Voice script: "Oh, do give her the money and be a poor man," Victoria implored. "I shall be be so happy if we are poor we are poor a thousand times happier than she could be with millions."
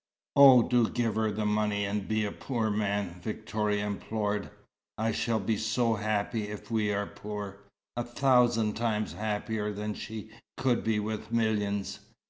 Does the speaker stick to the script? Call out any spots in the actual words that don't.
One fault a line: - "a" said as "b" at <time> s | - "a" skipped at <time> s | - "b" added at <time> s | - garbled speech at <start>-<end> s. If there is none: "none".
- "be" skipped at 5.6 s
- "we are poor" skipped at 7.6 s